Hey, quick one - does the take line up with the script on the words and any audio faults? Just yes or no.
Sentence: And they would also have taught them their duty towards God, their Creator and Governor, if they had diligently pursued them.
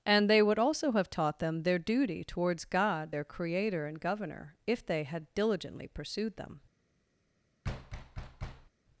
no